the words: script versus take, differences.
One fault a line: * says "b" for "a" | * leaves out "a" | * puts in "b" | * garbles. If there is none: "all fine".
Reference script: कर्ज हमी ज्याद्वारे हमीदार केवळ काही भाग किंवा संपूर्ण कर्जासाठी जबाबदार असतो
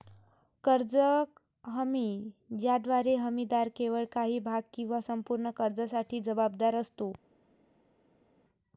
all fine